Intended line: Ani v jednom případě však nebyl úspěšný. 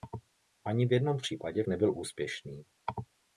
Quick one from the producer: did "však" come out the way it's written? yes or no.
no